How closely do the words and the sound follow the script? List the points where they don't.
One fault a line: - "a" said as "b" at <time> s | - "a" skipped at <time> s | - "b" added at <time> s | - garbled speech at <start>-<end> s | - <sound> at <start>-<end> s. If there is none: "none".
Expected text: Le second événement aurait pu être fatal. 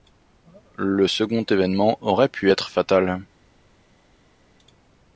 none